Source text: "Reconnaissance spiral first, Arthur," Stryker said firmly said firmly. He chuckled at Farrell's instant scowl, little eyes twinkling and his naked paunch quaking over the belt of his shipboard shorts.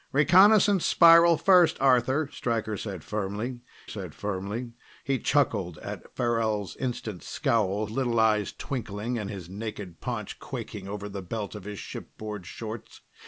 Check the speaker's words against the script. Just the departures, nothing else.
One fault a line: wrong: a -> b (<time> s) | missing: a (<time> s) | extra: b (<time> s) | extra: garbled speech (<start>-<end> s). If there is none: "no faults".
no faults